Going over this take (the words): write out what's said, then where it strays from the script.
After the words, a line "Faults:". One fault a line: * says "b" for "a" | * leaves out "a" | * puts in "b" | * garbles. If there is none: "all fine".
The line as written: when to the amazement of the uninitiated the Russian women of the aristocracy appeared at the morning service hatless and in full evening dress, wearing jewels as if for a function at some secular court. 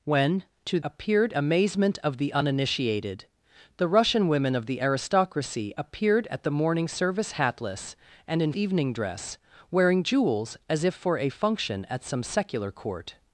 when to appeared amazement of the uninitiated the Russian women of the aristocracy appeared at the morning service hatless and in evening dress, wearing jewels as if for a function at some secular court.
Faults:
* says "appeared" for "the"
* leaves out "full"